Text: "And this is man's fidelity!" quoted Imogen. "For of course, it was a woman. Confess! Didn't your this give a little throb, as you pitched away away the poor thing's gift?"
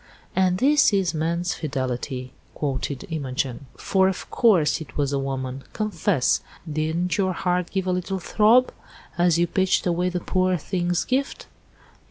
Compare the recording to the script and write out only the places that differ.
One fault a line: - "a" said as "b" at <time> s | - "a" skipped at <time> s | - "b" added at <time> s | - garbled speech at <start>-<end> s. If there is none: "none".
- "this" said as "heart" at 7.3 s
- "away" skipped at 10.1 s